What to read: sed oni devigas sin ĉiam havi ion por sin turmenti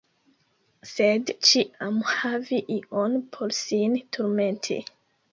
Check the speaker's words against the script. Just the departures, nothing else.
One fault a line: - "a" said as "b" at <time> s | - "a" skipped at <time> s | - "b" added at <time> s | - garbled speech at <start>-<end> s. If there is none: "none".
- "oni devigas sin" skipped at 1.3 s